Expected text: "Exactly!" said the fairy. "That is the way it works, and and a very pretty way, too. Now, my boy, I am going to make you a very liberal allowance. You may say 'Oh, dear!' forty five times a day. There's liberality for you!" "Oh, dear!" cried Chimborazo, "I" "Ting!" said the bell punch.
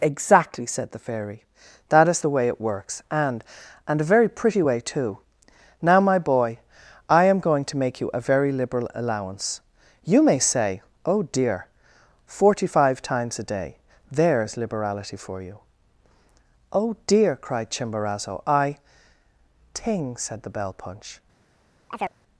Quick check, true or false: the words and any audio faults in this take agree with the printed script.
false